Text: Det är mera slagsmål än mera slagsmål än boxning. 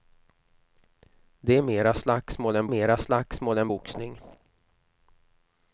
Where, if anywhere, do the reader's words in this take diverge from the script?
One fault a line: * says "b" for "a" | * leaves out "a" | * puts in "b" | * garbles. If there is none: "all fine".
all fine